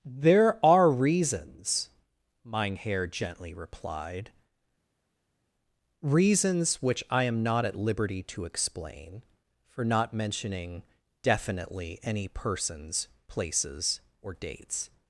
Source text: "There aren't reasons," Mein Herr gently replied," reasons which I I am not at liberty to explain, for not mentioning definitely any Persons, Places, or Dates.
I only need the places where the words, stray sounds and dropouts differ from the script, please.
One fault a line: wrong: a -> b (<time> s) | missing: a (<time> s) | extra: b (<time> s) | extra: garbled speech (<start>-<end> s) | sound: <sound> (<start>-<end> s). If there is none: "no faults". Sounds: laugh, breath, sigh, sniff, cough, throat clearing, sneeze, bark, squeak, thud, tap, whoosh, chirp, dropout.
wrong: aren't -> are (0.7 s)
missing: I (7.2 s)